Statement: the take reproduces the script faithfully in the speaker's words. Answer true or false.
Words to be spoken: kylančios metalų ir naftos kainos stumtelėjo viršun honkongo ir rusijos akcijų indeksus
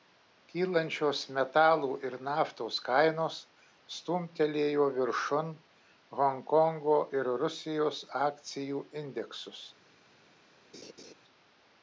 true